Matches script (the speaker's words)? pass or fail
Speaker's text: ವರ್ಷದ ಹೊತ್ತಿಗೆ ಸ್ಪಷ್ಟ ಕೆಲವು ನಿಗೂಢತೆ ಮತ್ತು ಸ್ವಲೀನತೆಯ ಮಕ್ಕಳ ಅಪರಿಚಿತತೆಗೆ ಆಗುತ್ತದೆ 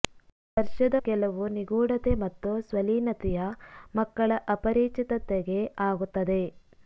fail